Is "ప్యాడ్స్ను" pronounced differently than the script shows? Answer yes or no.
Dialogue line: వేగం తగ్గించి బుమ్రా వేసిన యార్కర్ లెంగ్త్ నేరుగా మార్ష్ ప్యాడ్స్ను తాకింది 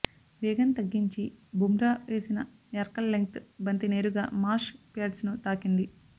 no